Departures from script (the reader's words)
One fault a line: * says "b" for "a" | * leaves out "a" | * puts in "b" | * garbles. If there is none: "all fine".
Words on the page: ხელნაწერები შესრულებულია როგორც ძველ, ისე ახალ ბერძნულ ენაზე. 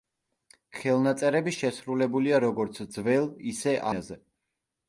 * leaves out "ახალ ბერძნულ"